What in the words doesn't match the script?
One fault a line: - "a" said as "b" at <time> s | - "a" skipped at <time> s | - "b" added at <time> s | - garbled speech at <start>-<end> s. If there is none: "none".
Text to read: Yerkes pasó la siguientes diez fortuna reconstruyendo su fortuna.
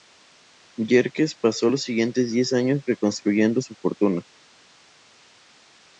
- "la" said as "los" at 1.7 s
- "fortuna" said as "años" at 2.5 s